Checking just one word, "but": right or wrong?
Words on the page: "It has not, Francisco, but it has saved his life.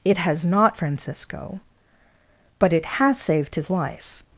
right